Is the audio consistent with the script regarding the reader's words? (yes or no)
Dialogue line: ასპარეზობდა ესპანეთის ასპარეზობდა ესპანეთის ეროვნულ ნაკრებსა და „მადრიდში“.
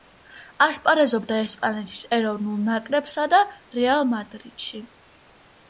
no